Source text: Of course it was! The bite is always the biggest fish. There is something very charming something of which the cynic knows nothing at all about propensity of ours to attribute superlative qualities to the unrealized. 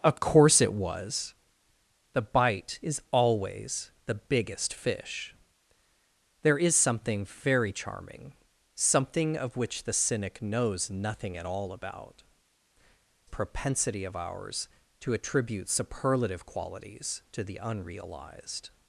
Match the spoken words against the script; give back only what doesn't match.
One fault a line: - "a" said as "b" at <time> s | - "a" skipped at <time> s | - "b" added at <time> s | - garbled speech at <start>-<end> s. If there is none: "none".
none